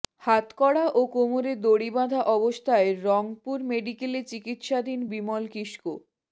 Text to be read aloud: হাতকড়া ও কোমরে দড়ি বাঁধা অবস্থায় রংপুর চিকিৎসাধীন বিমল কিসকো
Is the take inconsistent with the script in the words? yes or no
yes